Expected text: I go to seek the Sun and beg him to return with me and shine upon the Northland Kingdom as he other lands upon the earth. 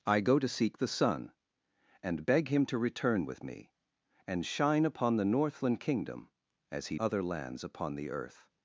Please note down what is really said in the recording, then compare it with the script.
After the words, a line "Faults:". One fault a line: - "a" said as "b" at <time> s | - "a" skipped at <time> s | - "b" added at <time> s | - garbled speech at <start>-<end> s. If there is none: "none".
I go to seek the Sun and beg him to return with me and shine upon the Northland Kingdom as he other lands upon the earth.
Faults:
none